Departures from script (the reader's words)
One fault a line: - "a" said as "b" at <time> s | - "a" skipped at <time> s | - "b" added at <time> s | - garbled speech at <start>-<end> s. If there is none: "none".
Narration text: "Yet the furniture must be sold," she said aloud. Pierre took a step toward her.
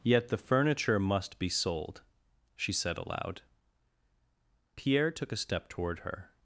none